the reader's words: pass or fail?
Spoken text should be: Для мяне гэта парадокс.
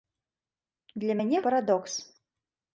fail